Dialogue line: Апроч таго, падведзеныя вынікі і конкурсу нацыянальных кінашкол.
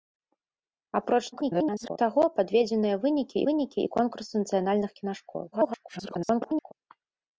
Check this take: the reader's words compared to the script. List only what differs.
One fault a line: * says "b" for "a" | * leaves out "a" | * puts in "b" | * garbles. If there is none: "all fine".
* garbles
* puts in "вынікі"
* garbles